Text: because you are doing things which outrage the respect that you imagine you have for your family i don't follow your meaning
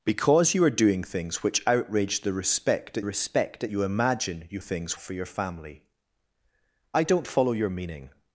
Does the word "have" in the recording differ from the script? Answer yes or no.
yes